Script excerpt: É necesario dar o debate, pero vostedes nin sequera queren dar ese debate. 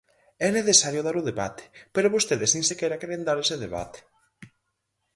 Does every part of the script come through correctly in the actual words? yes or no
yes